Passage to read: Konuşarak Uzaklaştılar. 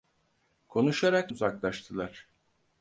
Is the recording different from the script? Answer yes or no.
no